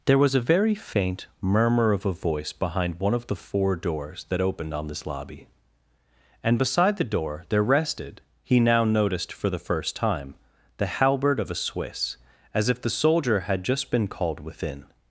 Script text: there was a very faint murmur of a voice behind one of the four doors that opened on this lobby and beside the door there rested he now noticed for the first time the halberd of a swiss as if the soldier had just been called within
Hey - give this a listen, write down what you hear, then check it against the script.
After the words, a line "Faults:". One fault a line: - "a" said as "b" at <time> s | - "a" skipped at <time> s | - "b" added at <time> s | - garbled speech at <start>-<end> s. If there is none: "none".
there was a very faint murmur of a voice behind one of the four doors that opened on this lobby and beside the door there rested he now noticed for the first time the halberd of a swiss as if the soldier had just been called within
Faults:
none